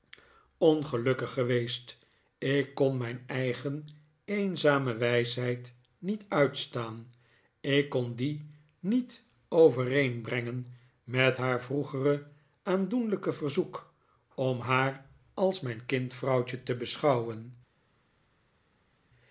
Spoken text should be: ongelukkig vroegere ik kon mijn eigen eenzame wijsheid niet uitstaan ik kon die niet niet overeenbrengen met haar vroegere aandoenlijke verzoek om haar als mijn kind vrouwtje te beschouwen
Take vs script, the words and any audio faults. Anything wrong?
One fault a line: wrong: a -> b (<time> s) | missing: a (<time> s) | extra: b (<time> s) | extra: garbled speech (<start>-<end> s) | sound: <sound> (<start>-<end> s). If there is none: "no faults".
wrong: vroegere -> geweest (1.3 s)
missing: niet (9.2 s)